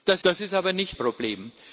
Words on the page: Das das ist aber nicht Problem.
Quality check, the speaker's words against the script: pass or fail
pass